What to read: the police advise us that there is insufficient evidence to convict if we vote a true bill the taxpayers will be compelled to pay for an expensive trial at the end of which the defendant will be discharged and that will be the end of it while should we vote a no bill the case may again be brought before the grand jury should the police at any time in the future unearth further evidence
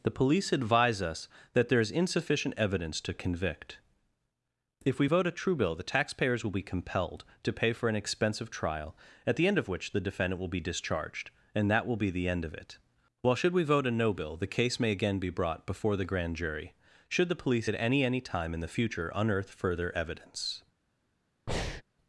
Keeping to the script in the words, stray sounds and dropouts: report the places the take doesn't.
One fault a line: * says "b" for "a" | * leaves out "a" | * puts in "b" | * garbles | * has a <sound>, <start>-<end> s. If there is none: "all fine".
* puts in "any"
* has a breath, 21.5-21.8 s